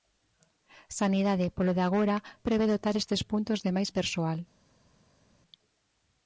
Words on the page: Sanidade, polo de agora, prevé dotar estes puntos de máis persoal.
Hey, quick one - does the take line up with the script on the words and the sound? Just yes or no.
yes